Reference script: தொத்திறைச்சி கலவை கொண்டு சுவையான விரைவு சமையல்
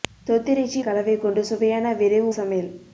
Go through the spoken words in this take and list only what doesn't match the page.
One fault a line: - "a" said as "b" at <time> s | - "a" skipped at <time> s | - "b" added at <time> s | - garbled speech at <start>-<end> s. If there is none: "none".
none